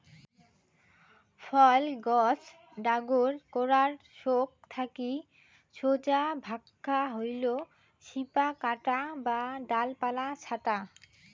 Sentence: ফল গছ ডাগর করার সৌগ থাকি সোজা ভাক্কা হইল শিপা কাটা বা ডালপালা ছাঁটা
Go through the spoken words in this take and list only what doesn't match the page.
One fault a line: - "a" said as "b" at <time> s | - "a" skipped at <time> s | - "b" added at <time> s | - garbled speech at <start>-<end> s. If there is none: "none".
none